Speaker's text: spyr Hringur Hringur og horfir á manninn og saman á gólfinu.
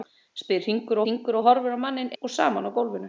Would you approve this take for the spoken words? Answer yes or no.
yes